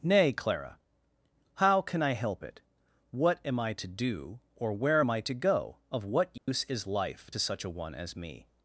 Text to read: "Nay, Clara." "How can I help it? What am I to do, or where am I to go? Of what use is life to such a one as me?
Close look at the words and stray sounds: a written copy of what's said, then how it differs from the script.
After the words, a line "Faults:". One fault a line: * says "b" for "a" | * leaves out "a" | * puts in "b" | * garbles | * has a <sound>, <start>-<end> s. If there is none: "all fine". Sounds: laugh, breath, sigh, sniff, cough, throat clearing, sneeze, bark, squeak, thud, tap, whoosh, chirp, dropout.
"Nay, Clara." "How can I help it? What am I to do, or where am I to go? Of what use is life to such a one as me?
Faults:
* has a dropout, 6.4-6.5 s